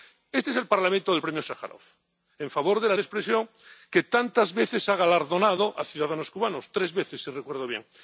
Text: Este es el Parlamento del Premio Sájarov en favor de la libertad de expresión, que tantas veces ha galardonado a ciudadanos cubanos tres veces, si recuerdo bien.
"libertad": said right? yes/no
no